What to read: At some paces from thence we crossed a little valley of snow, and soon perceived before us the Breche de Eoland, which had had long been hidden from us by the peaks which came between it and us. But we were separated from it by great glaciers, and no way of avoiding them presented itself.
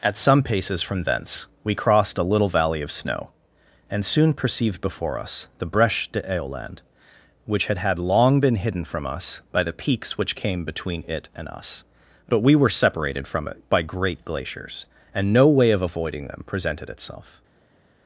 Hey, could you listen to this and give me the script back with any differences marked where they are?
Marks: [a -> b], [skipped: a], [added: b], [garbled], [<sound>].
At some paces from thence we crossed a little valley of snow, and soon perceived before us the Breche de Eoland, which had had long been hidden from us by the peaks which came between it and us. But we were separated from it by great glaciers, and no way of avoiding them presented itself.